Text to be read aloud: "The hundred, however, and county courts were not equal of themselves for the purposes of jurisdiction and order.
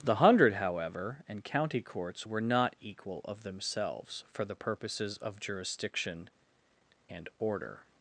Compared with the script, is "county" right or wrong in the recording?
right